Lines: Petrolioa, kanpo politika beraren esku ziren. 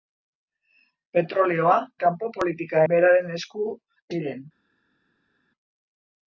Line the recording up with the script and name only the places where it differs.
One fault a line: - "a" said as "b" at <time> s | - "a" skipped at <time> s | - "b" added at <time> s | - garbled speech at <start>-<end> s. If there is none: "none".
none